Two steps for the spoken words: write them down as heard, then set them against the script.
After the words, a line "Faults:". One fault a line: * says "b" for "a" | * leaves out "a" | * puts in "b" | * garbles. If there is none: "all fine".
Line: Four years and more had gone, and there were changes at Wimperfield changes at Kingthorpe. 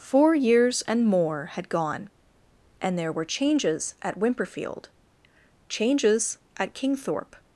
Four years and more had gone, and there were changes at Wimperfield changes at Kingthorpe.
Faults:
all fine